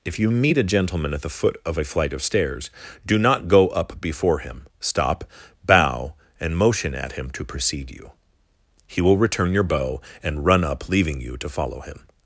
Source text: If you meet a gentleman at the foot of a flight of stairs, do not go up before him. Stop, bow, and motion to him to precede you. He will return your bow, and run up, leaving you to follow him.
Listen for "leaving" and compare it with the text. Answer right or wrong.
right